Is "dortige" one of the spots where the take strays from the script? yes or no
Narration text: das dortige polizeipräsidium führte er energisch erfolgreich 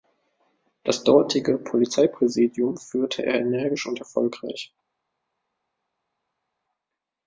no